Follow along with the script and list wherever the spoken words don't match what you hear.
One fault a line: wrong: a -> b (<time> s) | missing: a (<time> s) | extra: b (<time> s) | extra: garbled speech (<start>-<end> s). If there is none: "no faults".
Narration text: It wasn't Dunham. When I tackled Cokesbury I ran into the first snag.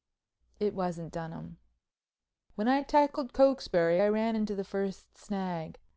no faults